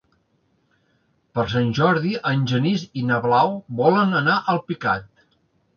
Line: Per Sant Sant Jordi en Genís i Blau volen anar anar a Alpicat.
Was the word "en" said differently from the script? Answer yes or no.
no